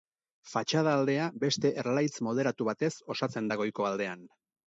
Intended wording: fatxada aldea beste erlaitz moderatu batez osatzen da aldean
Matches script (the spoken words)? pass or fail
fail